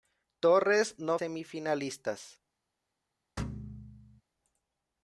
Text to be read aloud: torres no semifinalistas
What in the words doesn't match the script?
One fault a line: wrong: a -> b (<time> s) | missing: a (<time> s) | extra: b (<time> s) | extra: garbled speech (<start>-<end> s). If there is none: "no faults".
no faults